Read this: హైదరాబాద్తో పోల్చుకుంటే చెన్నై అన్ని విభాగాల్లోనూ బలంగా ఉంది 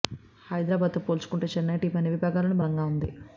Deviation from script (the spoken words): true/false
true